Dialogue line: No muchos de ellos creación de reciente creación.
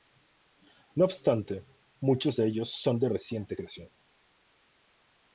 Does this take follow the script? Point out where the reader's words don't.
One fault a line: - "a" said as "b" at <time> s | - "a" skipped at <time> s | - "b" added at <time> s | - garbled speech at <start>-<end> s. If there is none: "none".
- "obstante" added at 1.1 s
- "creación" said as "son" at 2.7 s